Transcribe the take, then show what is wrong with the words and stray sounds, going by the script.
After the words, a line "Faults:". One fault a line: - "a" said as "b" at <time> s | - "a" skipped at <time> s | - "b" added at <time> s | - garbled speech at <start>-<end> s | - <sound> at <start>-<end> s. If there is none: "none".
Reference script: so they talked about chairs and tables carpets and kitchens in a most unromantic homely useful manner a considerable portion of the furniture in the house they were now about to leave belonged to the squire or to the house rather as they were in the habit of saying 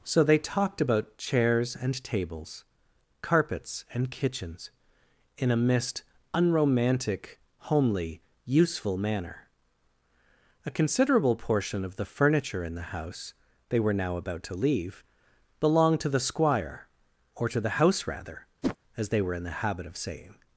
so they talked about chairs and tables carpets and kitchens in a mist unromantic homely useful manner a considerable portion of the furniture in the house they were now about to leave belonged to the squire or to the house rather as they were in the habit of saying
Faults:
- "most" said as "mist" at 5.6 s
- whoosh at 18.6-18.8 s